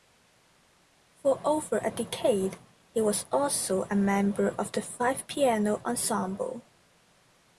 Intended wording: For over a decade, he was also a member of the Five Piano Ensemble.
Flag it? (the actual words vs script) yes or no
no